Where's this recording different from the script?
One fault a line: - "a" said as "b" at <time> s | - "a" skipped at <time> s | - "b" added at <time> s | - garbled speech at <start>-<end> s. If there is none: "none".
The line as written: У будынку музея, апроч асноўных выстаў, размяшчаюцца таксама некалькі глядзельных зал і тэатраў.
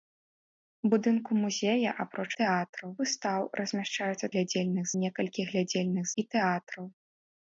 - "асноўных" said as "тэатраў" at 2.4 s
- "таксама" said as "глядзельных" at 4.3 s
- "зал" skipped at 6.1 s